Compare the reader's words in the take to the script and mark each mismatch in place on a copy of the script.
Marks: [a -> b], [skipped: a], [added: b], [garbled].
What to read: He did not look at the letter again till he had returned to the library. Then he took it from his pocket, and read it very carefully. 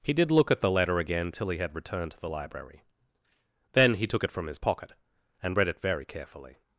He did [skipped: not] look at the letter again till he had returned to the library. Then he took it from his pocket, and read it very carefully.